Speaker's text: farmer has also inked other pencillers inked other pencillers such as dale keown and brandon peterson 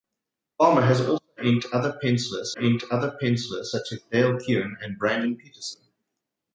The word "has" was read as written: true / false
true